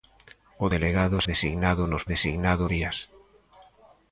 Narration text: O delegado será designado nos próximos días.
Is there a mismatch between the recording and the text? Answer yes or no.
yes